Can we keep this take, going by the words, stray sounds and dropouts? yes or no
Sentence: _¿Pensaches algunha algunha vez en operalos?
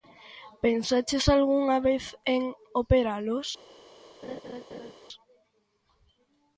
no